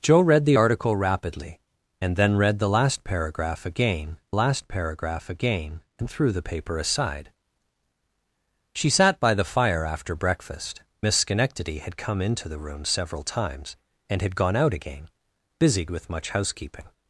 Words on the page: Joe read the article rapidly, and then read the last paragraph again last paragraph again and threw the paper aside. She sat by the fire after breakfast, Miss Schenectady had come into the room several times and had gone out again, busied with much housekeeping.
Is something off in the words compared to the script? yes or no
no